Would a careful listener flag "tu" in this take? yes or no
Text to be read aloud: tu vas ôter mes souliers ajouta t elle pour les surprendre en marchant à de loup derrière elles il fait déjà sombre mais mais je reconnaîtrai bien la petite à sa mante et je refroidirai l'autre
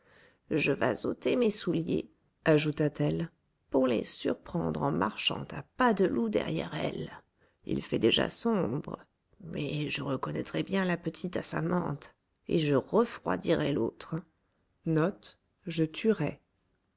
yes